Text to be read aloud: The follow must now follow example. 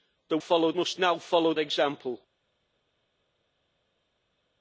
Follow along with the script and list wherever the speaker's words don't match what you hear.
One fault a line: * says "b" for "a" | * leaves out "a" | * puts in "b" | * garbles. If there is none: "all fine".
all fine